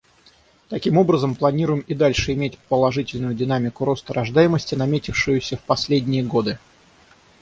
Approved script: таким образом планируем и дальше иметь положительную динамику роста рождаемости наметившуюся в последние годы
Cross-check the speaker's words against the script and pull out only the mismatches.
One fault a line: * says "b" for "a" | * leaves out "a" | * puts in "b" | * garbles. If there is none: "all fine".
all fine